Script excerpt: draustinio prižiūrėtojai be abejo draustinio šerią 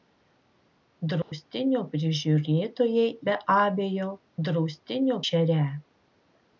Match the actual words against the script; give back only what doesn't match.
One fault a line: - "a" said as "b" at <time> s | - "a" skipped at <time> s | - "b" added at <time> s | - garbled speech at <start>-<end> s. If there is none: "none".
none